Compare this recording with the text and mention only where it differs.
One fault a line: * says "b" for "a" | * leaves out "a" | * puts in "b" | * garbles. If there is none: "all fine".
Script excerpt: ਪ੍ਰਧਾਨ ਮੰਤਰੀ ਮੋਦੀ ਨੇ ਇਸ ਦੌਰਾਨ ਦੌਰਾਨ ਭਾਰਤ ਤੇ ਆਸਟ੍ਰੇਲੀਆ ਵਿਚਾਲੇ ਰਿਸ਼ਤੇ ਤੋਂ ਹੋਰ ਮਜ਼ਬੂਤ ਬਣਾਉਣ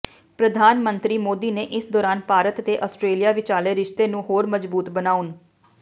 * leaves out "ਦੌਰਾਨ"
* says "ਨੂੰ" for "ਤੋਂ"